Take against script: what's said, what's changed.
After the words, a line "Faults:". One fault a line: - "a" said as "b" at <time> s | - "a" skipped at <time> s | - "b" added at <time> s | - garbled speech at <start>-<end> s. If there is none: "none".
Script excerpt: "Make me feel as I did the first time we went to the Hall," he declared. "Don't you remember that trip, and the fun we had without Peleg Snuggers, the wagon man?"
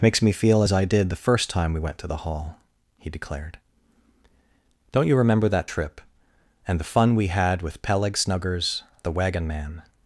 "Makes me feel as I did the first time we went to the Hall," he declared. "Don't you remember that trip, and the fun we had with Peleg Snuggers, the wagon man?"
Faults:
- "Make" said as "Makes" at 0.0 s
- "without" said as "with" at 7.6 s